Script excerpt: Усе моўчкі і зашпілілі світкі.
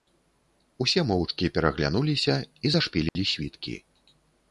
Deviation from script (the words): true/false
true